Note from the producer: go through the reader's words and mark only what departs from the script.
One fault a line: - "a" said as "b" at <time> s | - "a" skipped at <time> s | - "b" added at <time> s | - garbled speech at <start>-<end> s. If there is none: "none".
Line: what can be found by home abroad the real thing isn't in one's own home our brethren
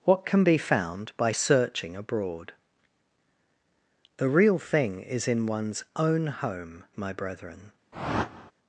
- "home" said as "searching" at 1.3 s
- "isn't" said as "is" at 5.0 s
- "our" said as "my" at 6.9 s